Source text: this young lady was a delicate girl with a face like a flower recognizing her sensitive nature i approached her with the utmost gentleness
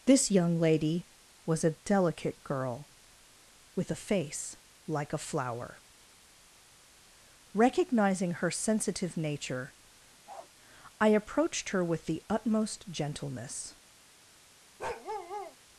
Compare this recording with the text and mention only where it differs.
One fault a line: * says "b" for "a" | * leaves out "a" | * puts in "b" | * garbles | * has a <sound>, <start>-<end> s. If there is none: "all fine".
* has a bark, 10.3-10.5 s
* has a bark, 14.8-15.6 s